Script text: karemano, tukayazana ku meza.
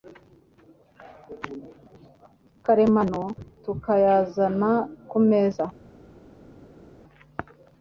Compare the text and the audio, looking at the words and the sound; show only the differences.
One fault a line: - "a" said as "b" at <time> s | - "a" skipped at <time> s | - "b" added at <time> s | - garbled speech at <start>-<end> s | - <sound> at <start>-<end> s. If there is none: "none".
none